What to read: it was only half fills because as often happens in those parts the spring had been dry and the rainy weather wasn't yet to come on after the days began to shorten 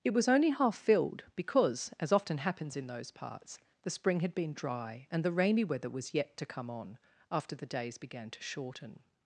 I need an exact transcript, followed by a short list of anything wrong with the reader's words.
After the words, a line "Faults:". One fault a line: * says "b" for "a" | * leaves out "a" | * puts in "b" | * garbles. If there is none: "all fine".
it was only half filled because as often happens in those parts the spring had been dry and the rainy weather was yet to come on after the days began to shorten
Faults:
* says "filled" for "fills"
* says "was" for "wasn't"